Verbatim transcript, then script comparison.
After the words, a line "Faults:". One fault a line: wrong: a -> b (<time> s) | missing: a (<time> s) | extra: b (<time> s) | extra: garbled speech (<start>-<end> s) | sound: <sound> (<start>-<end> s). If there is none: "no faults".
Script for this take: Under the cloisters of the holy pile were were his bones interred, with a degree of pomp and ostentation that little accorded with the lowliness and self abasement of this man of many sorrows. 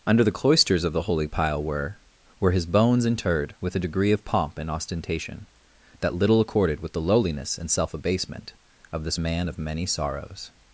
Under the cloisters of the holy pile were were his bones interred, with a degree of pomp and ostentation that little accorded with the lowliness and self abasement of this man of many sorrows.
Faults:
no faults